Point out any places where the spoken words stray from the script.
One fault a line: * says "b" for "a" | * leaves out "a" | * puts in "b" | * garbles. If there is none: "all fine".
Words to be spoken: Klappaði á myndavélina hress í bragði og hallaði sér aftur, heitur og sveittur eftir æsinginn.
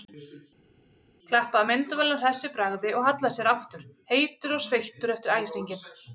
all fine